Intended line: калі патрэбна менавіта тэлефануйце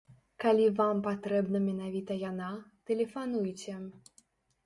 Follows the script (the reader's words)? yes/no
no